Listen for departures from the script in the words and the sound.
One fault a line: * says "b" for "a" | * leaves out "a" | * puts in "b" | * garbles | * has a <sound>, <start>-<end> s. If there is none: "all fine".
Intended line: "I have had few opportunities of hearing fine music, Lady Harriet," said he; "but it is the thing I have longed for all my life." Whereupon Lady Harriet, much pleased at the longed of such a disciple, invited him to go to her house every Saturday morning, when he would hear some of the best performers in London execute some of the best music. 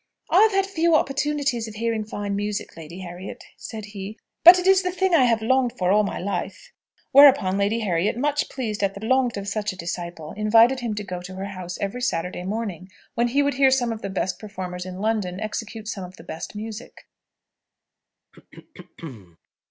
* has a throat clearing, 18.3-19.4 s